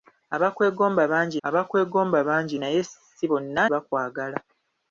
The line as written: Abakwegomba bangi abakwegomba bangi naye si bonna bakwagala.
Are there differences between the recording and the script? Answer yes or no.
no